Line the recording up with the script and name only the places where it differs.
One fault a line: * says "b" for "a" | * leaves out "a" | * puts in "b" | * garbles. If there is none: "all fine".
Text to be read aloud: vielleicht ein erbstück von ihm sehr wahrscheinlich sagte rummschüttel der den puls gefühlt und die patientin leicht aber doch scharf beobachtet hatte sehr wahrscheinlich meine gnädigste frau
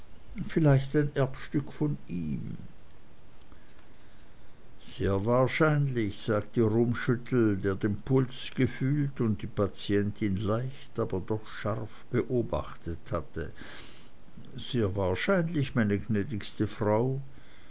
all fine